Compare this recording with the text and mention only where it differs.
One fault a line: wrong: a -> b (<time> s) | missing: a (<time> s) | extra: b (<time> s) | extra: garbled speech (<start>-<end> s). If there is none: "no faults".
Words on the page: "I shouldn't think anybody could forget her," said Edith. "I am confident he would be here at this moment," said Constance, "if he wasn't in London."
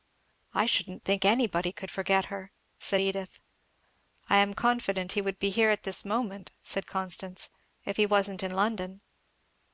no faults